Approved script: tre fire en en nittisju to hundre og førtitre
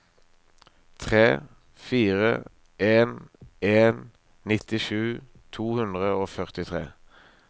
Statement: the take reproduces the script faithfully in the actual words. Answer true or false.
true